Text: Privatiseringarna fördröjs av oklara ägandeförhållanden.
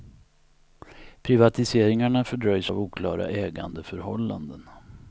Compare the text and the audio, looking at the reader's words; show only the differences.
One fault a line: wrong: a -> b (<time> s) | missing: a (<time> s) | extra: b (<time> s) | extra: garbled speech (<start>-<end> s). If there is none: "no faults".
no faults